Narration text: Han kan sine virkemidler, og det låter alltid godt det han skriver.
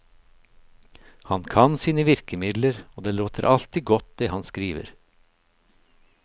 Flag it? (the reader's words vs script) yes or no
no